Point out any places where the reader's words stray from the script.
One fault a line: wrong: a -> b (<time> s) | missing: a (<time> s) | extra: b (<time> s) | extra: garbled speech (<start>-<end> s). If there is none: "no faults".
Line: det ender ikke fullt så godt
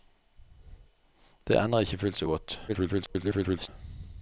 extra: garbled speech (2.7-3.7 s)